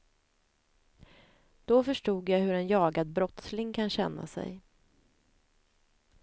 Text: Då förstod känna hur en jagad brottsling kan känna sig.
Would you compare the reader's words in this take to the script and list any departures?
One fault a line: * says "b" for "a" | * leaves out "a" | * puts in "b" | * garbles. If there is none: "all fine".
* says "jag" for "känna"